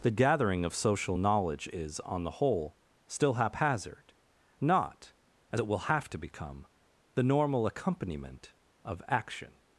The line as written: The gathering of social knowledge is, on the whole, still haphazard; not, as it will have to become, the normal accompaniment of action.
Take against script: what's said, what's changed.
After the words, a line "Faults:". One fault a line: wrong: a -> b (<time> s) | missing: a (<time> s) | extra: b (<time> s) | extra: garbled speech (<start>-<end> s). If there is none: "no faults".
The gathering of social knowledge is, on the whole, still haphazard; not, as it will have to become, the normal accompaniment of action.
Faults:
no faults